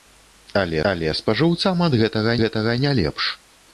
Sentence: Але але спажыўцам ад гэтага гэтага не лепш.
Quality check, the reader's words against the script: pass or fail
pass